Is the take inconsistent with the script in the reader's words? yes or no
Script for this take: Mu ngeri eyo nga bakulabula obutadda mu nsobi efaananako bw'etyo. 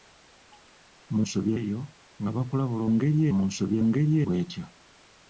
yes